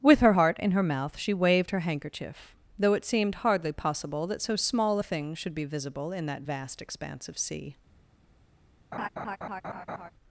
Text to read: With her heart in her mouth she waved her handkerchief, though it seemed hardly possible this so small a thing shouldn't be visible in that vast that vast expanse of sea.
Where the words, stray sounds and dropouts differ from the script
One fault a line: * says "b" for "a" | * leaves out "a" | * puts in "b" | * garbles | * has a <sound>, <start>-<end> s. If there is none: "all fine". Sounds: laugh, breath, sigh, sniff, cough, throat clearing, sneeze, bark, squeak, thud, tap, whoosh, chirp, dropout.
* says "that" for "this"
* says "should" for "shouldn't"
* leaves out "that vast"
* has a laugh, 8.9-10.1 s